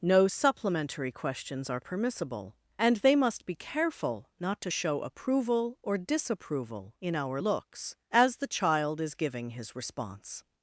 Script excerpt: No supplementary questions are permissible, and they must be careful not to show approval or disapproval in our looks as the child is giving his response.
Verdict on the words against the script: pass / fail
pass